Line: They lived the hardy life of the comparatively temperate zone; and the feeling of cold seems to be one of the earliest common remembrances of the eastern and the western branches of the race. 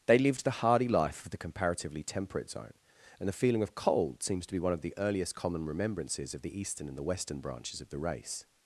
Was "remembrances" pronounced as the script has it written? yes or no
yes